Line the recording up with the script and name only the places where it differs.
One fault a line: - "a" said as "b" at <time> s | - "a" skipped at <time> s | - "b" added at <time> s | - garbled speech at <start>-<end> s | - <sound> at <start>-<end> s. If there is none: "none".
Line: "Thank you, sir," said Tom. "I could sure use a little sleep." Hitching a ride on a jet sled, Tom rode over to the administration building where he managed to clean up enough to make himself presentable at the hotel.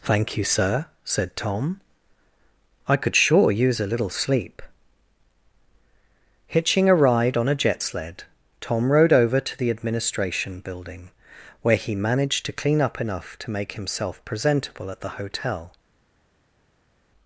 none